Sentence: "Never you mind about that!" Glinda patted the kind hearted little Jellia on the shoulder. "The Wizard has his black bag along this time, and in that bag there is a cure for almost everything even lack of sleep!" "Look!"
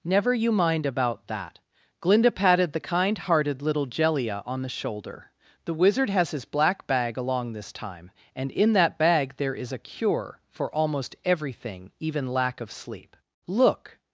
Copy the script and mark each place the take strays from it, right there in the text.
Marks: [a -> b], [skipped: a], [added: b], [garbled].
"Never you mind about that!" Glinda patted the kind hearted little Jellia on the shoulder. "The Wizard has his black bag along this time, and in that bag there is a cure for almost everything even lack of sleep!" "Look!"